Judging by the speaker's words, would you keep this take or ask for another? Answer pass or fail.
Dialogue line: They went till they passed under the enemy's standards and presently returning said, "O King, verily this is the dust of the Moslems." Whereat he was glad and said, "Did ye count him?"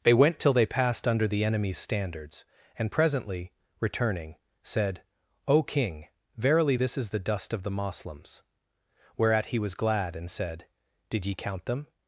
fail